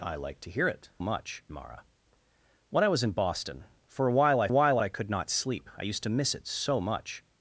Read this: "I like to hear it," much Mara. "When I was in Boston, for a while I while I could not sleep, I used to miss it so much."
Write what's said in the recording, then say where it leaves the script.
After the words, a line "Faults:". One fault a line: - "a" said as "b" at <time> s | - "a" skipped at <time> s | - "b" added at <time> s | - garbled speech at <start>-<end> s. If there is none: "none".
"I like to hear it," much Mara. "When I was in Boston, for a while I while I could not sleep, I used to miss it so much."
Faults:
none